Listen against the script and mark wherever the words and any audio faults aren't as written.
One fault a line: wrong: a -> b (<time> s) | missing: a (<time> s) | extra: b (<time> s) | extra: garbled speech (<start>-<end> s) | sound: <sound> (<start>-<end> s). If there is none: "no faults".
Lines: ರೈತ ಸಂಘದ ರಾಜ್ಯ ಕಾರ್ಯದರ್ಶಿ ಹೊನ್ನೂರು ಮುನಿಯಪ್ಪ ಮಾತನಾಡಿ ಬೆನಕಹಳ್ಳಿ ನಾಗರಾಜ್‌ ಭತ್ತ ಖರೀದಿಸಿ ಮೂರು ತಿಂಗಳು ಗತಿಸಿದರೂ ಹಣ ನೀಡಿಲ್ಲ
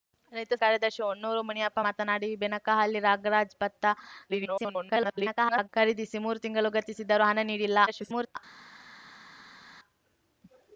missing: ಸಂಘದ ರಾಜ್ಯ (0.5 s)
extra: garbled speech (4.3-5.7 s)
extra: garbled speech (7.9-8.4 s)